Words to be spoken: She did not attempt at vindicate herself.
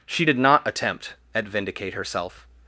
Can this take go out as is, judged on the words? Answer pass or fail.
pass